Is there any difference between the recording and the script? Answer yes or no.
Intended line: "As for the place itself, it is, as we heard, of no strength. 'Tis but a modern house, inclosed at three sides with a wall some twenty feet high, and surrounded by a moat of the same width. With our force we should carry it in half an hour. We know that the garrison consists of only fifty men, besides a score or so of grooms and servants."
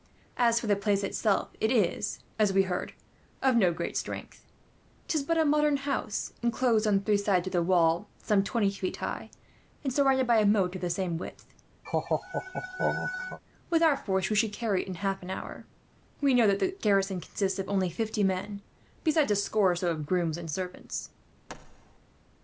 yes